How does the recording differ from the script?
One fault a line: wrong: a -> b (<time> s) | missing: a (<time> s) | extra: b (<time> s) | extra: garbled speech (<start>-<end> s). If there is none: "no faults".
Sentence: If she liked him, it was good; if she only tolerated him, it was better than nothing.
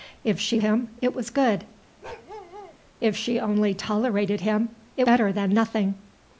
missing: liked (0.6 s)
missing: was (5.1 s)